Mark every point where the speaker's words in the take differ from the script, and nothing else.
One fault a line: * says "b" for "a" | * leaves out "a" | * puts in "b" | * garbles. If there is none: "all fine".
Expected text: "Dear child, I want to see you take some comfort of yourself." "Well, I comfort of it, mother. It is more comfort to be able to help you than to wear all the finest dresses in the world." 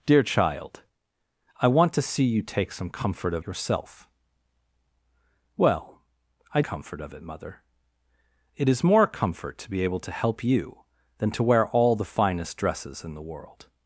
all fine